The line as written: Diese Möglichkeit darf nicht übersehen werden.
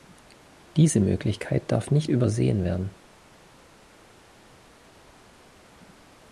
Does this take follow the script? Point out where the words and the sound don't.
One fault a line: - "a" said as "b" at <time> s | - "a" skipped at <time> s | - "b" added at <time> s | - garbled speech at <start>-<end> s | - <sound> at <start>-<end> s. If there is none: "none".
none